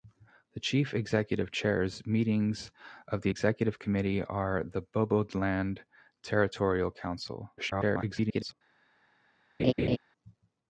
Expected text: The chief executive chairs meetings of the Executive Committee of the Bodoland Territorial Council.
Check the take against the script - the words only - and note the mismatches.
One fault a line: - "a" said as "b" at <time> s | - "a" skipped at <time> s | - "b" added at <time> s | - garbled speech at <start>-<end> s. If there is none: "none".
- garbled speech at 7.6-8.5 s